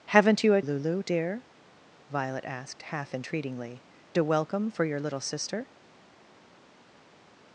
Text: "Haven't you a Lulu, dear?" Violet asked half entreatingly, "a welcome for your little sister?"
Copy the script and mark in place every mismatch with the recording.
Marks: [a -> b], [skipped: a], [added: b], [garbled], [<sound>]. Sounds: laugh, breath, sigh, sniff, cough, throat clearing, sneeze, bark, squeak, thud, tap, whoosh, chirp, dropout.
"Haven't you a Lulu, dear?" Violet asked half entreatingly, "a welcome for your little sister?"